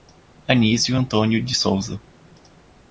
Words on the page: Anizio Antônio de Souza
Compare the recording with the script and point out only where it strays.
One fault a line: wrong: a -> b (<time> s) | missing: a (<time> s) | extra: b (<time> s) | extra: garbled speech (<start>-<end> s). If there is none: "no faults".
no faults